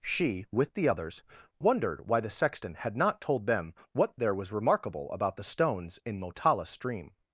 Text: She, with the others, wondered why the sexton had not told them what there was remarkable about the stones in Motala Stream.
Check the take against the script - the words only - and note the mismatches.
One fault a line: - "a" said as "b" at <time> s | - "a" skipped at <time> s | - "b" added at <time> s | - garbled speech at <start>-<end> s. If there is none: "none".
none